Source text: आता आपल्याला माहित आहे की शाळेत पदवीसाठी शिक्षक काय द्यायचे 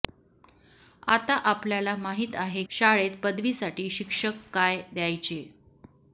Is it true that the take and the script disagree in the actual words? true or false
true